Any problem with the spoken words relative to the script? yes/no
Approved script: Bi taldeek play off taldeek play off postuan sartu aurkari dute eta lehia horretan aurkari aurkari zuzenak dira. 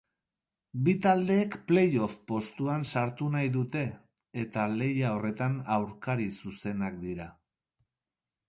yes